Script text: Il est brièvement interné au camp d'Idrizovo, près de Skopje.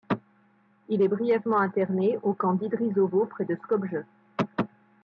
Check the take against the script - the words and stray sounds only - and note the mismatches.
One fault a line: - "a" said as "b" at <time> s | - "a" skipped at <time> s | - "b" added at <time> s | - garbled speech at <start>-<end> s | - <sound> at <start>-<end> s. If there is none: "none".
none